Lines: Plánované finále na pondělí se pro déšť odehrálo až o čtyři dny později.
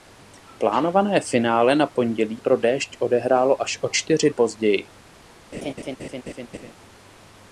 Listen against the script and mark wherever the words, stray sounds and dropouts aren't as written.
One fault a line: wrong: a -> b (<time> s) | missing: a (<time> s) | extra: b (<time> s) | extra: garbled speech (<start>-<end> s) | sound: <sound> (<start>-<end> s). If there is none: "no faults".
missing: se (2.4 s)
missing: dny (4.3 s)
sound: laugh (5.5-6.7 s)